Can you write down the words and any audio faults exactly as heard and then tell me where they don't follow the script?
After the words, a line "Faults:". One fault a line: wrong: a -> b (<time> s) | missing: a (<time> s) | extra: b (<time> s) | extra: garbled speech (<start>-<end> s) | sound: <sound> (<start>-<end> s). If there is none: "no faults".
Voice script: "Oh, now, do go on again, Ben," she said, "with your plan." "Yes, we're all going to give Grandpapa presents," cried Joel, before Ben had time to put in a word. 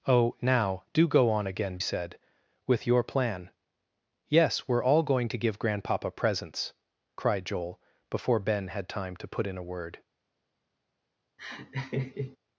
"Oh, now, do go on again, Said, "with your plan." "Yes, we're all going to give Grandpapa presents," cried Joel, before Ben had time to put in a word.
Faults:
missing: Ben she (1.8 s)
sound: laugh (11.4-12.4 s)